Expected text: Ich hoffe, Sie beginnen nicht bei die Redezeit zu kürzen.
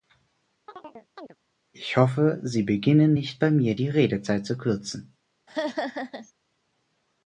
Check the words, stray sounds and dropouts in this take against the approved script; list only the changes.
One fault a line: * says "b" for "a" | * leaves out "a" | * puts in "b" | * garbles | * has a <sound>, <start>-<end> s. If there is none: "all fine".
* has a chirp, 0.7-1.4 s
* puts in "mir"
* has a laugh, 5.5-6.3 s